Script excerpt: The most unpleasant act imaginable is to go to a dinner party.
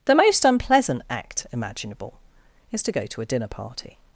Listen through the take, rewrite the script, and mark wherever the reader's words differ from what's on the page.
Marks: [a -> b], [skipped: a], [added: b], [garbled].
The most unpleasant act imaginable is to go to a dinner party.